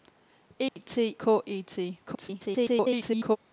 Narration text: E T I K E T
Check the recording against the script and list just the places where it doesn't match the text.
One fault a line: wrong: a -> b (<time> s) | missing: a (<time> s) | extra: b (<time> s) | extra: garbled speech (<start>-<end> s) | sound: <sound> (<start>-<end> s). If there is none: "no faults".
sound: dropout (0.7-0.8 s)
missing: I (1.1 s)
extra: garbled speech (2.1-3.4 s)